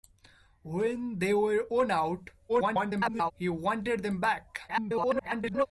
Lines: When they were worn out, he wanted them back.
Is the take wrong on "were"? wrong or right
right